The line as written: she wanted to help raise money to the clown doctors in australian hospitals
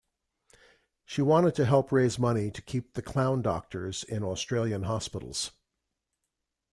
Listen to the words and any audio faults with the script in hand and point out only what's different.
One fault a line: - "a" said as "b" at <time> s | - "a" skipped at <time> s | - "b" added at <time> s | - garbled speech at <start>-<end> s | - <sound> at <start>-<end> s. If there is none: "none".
- "keep" added at 2.6 s